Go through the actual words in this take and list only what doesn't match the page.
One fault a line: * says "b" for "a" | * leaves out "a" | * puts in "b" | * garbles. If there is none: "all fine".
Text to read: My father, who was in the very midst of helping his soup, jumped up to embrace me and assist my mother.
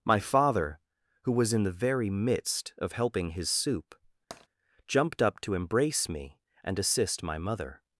all fine